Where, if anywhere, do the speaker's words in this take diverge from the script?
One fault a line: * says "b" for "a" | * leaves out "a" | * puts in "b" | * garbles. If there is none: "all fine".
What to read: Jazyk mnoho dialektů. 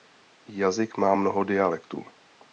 * puts in "má"